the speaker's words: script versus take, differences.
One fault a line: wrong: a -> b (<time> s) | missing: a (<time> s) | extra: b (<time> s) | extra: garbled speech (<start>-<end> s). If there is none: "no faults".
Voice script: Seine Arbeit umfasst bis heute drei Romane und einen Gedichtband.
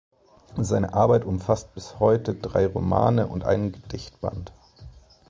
no faults